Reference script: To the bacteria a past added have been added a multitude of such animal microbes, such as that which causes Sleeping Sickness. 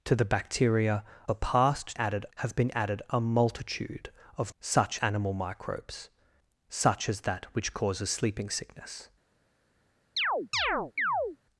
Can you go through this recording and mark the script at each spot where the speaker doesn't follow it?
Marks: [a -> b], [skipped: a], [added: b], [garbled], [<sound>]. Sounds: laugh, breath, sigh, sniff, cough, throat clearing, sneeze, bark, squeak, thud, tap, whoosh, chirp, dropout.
To the bacteria a past added have been added a multitude of such animal microbes, such as that which causes Sleeping Sickness. [chirp]